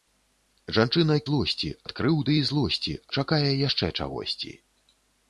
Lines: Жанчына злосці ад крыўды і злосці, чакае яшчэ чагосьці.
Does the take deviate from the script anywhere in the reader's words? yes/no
no